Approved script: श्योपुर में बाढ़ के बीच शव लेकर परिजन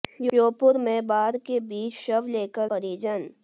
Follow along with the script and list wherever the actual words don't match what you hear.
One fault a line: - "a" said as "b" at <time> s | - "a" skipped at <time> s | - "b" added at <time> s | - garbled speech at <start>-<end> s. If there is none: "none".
none